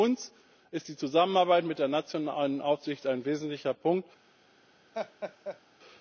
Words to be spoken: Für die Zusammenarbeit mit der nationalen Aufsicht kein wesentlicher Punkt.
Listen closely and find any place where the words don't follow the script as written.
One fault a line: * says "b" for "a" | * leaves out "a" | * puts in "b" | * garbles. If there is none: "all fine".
* puts in "uns ist"
* says "ein" for "kein"